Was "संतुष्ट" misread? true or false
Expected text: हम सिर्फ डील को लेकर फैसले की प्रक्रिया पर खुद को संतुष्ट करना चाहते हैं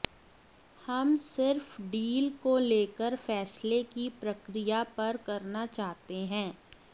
true